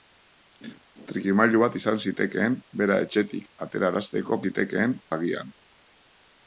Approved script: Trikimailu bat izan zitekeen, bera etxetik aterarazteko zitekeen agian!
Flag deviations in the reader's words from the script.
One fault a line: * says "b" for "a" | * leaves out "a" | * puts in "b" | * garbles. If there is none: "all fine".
all fine